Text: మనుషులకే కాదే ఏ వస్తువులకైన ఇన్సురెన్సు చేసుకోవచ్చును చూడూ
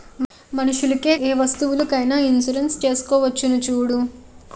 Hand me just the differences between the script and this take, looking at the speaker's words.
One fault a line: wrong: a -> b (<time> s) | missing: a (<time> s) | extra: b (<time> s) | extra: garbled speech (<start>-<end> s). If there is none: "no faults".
missing: కాదే (1.1 s)